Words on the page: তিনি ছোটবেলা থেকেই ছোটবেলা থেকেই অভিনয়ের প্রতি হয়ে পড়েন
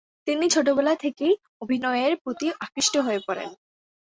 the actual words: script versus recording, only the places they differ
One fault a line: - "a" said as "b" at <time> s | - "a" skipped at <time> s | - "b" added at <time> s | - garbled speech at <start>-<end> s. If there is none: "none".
- "ছোটবেলা থেকেই" skipped at 1.3 s
- "আকৃষ্ট" added at 2.6 s